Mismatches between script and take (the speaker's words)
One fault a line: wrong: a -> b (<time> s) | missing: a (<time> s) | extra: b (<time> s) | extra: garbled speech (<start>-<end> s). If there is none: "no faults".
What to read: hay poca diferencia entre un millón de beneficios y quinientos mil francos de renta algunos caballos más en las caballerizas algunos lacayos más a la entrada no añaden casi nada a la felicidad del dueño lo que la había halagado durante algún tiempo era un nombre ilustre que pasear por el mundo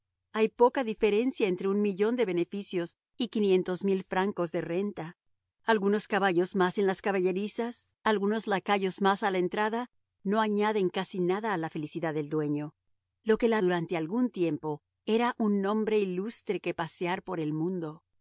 missing: había halagado (13.6 s)